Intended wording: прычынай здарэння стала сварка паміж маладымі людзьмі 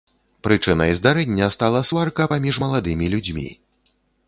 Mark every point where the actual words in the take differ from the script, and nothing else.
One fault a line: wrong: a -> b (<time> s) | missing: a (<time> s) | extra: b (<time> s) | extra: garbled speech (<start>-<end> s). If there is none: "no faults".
no faults